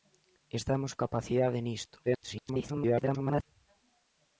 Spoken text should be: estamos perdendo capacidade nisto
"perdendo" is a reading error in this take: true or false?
true